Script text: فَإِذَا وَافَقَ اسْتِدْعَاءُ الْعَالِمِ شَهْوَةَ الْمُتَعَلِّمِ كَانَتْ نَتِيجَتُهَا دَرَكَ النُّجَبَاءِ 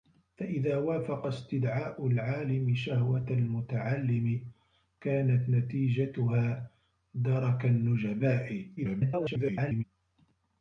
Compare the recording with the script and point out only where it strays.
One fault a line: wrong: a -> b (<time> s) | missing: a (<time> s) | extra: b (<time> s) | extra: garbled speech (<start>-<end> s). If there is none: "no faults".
extra: garbled speech (8.8-9.8 s)